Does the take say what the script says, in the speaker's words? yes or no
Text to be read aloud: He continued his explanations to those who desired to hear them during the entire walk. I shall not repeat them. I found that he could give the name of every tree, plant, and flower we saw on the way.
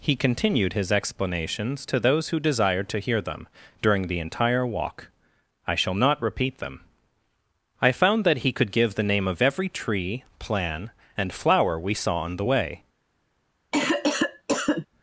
no